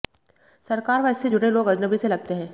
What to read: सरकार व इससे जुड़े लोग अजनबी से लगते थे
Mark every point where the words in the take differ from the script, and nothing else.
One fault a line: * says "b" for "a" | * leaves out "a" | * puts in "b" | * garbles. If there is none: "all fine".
* says "हैं" for "थे"